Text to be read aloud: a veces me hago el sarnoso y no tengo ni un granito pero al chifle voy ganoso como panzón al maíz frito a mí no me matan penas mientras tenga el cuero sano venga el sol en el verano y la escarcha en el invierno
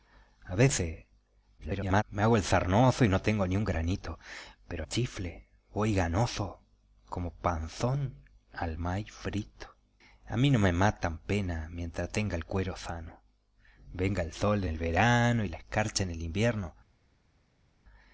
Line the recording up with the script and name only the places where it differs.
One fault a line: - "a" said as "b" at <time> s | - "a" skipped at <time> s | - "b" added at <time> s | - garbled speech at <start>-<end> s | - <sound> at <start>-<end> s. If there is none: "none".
- garbled speech at 1.6-2.0 s
- "al" skipped at 4.8 s
- "en" skipped at 14.6 s